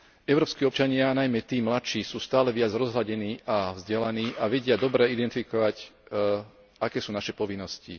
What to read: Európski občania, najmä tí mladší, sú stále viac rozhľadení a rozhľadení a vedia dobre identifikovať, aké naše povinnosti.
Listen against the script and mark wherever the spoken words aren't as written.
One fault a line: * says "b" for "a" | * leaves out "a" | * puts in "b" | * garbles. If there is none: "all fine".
* says "vzdelaní" for "rozhľadení"
* puts in "sú"